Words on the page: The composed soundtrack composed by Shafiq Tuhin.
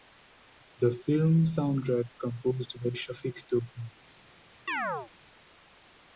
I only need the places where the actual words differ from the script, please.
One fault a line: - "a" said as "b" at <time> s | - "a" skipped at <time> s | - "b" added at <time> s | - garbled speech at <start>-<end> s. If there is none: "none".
- "composed" said as "film" at 1.1 s